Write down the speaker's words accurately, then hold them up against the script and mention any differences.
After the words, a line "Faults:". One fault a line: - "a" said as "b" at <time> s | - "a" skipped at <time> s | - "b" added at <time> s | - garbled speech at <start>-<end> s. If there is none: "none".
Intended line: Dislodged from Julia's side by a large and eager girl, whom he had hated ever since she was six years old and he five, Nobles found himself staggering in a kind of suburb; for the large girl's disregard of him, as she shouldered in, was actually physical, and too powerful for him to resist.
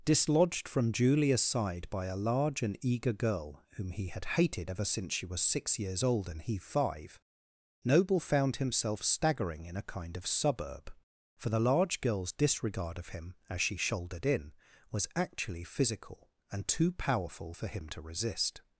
Dislodged from Julia's side by a large and eager girl, whom he had hated ever since she was six years old and he five, Noble found himself staggering in a kind of suburb; for the large girl's disregard of him, as she shouldered in, was actually physical, and too powerful for him to resist.
Faults:
- "Nobles" said as "Noble" at 7.8 s